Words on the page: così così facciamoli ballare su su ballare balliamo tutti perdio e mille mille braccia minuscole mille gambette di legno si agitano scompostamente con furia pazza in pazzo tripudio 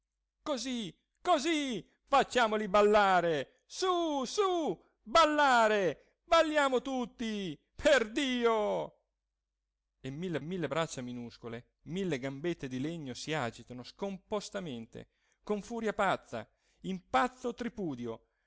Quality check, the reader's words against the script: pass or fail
pass